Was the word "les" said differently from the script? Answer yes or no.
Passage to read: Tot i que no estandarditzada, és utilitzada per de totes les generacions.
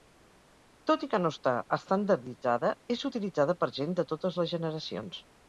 no